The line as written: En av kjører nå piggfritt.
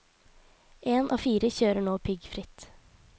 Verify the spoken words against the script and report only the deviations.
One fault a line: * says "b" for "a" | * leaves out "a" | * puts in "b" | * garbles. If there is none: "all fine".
* puts in "fire"